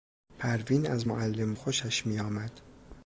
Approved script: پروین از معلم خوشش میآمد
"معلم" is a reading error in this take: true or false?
false